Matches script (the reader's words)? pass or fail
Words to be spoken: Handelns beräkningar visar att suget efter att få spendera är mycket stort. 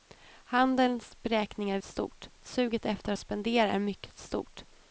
fail